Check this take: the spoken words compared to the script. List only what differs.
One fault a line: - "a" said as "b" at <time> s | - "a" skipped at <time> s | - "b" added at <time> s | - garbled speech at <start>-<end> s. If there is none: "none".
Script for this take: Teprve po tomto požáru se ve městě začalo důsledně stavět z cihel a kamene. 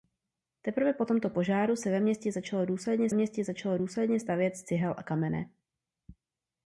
- "městě začalo důsledně" added at 3.1 s